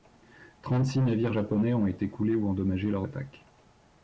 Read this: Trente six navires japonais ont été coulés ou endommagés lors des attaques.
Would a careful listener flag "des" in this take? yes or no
yes